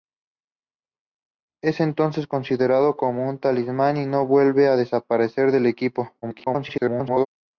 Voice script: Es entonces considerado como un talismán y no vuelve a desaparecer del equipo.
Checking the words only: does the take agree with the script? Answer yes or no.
no